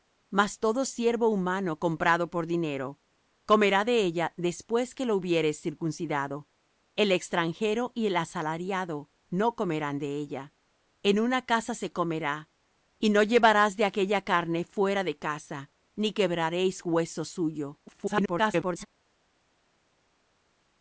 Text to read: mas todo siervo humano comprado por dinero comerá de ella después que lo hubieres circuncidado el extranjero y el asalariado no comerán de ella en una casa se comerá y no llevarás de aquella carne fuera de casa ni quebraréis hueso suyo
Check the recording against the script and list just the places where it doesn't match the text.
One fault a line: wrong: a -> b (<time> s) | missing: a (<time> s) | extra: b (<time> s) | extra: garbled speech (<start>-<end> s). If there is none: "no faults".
extra: garbled speech (17.9-18.9 s)